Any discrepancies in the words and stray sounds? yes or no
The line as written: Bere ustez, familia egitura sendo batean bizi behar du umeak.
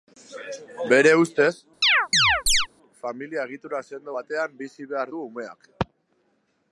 yes